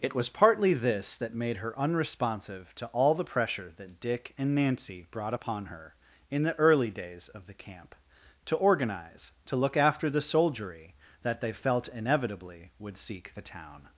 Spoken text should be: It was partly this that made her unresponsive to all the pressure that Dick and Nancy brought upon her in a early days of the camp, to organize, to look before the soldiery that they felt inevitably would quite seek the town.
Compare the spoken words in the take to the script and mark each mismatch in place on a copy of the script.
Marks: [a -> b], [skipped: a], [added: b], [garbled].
It was partly this that made her unresponsive to all the pressure that Dick and Nancy brought upon her in [a -> the] early days of the camp, to organize, to look [before -> after] the soldiery that they felt inevitably would [skipped: quite] seek the town.